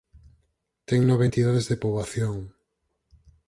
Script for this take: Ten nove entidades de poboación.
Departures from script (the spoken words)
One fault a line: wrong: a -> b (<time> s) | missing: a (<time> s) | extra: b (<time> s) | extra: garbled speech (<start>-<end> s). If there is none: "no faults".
no faults